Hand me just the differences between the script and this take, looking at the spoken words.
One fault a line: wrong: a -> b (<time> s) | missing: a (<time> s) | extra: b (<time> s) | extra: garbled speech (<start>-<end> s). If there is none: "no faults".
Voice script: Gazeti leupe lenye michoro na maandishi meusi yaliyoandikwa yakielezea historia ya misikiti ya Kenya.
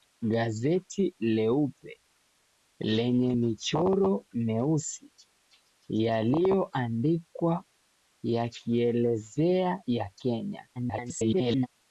missing: na maandishi (4.2 s)
missing: historia ya misikiti (9.8 s)
extra: garbled speech (10.8-11.7 s)